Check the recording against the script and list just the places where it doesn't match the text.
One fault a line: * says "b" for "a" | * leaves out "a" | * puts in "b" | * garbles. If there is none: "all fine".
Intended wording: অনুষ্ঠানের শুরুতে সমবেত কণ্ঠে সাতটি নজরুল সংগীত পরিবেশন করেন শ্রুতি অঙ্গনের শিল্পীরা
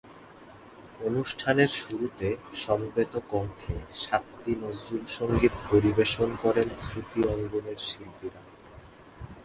all fine